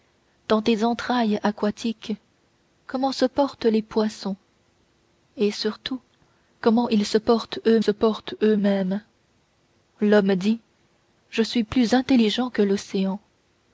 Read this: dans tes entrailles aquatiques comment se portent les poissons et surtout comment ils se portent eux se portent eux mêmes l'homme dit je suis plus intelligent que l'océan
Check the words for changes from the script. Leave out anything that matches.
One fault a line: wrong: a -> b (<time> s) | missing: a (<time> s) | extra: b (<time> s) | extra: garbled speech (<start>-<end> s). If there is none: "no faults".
no faults